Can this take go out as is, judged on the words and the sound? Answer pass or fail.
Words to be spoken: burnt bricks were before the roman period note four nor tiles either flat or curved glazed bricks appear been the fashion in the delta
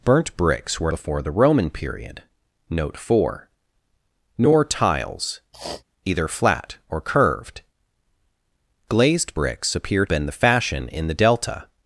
fail